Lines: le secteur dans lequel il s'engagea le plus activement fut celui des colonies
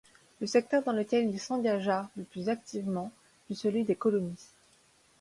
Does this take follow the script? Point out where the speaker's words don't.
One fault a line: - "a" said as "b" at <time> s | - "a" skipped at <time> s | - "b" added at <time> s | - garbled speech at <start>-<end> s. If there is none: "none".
none